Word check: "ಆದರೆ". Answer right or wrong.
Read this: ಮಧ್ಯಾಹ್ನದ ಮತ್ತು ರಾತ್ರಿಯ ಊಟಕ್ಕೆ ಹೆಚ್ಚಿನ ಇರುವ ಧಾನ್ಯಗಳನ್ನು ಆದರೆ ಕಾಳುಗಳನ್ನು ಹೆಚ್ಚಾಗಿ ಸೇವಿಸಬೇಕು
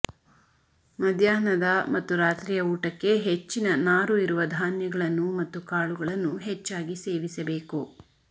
wrong